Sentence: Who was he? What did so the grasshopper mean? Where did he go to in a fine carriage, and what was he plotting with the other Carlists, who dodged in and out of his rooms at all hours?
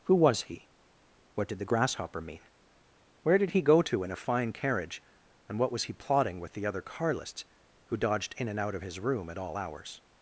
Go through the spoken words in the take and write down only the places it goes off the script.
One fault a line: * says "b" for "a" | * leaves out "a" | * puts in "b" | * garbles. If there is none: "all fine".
* leaves out "so"
* says "room" for "rooms"